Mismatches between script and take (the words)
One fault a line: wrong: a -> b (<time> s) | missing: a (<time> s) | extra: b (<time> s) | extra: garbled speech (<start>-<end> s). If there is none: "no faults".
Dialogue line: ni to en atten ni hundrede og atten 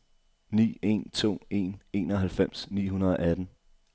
extra: en (0.8 s)
wrong: atten -> enoghalvfems (1.9 s)